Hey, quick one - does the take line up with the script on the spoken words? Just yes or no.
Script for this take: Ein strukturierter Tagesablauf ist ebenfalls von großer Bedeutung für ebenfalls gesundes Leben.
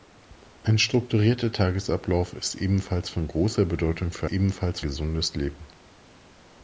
yes